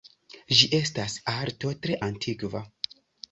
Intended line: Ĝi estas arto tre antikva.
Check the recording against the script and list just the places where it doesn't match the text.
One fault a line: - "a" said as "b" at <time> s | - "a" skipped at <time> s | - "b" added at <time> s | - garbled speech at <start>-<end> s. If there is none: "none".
none